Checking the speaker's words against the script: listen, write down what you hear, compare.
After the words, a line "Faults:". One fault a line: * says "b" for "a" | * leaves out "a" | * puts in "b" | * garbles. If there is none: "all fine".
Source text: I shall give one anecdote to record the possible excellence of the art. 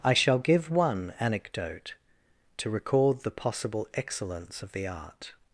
I shall give one anecdote to record the possible excellence of the art.
Faults:
all fine